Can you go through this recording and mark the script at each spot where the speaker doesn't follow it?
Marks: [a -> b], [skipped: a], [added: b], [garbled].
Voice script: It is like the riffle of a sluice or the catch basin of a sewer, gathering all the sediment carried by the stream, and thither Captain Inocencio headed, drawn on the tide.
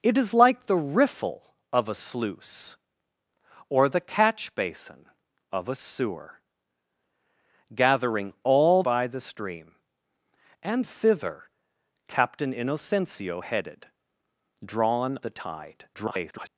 It is like the riffle of a sluice or the catch basin of a sewer, gathering all [skipped: the sediment carried] by the stream, and thither Captain Inocencio headed, drawn [skipped: on] the tide. [garbled]